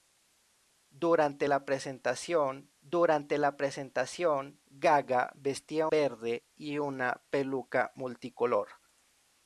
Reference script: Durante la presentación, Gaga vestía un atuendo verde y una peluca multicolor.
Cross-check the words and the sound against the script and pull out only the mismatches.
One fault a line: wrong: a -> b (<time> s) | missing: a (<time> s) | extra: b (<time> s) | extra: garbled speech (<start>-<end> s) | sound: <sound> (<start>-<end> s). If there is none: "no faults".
extra: durante la presentación (2.8 s)
missing: un atuendo (5.9 s)